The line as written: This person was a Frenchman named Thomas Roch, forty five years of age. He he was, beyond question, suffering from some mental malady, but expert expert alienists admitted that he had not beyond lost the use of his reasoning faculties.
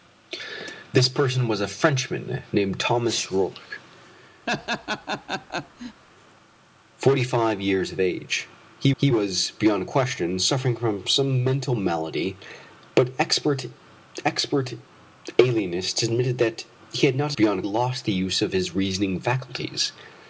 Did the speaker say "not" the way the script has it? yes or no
yes